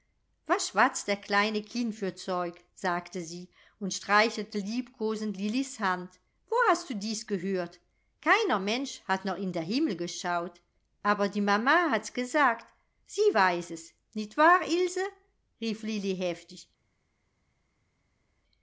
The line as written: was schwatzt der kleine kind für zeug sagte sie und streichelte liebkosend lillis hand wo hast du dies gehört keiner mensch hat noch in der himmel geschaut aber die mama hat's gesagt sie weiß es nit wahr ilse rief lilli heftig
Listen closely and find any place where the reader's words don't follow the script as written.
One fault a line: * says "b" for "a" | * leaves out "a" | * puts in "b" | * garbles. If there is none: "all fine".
all fine